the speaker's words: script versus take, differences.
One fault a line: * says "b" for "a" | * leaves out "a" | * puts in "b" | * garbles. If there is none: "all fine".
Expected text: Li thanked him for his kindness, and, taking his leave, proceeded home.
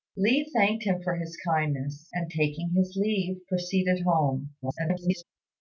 * garbles